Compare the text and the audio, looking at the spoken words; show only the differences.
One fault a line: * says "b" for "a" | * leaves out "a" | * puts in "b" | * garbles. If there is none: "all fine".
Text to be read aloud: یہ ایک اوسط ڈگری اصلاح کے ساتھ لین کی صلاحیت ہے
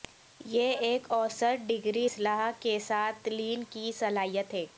all fine